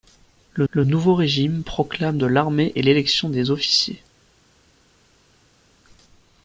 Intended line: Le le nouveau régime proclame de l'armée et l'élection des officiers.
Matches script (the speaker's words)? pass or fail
pass